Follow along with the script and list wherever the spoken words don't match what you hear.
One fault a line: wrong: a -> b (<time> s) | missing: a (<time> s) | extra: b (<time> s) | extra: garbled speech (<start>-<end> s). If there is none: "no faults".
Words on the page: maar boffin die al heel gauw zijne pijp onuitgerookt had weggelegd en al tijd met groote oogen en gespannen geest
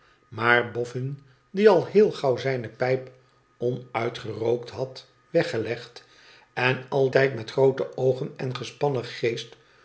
no faults